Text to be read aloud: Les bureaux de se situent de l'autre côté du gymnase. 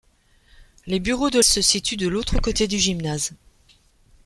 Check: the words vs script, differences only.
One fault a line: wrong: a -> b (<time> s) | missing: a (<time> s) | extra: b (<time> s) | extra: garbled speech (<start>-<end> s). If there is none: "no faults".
no faults